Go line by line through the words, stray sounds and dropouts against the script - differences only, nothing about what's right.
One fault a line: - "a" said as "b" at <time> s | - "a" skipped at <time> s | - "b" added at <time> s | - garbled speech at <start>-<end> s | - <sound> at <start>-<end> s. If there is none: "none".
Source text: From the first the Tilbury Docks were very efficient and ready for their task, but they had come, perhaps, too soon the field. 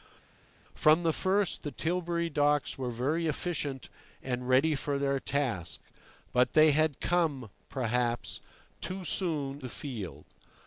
none